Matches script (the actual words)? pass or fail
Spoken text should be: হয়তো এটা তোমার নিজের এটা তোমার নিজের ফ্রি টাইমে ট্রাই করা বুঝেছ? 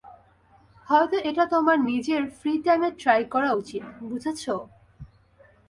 fail